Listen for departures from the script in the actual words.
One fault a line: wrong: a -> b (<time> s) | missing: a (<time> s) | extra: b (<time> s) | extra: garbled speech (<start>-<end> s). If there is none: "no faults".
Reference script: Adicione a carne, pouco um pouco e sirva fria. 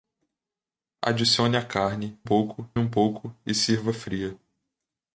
no faults